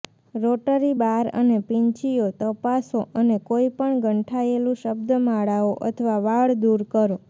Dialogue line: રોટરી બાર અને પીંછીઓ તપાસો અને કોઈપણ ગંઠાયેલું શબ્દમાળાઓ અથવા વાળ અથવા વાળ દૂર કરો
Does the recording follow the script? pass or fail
fail